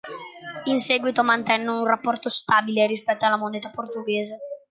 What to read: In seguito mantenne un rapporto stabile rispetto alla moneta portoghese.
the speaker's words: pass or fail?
pass